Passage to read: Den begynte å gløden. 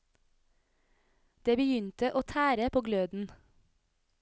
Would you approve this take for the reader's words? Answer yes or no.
no